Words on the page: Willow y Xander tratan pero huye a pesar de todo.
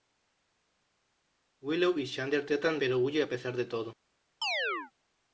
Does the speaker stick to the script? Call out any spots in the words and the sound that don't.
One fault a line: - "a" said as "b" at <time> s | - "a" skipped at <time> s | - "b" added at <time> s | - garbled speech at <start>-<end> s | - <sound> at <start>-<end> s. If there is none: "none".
- chirp at 4.4-4.9 s